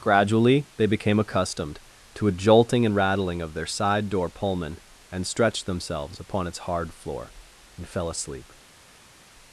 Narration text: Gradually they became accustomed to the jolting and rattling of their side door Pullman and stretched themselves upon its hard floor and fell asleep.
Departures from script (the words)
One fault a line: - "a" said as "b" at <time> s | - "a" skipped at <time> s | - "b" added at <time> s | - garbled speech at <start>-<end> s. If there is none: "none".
- "the" said as "a" at 2.2 s